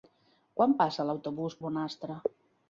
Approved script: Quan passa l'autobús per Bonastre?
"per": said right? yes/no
no